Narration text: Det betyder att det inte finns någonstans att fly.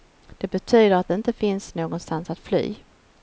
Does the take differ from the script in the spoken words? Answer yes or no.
no